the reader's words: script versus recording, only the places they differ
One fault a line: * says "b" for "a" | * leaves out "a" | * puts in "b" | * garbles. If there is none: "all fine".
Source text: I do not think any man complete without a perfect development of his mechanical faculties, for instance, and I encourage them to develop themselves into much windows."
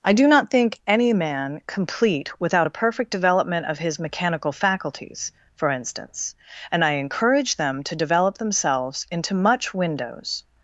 all fine